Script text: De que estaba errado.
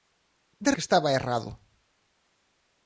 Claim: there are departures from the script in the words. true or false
false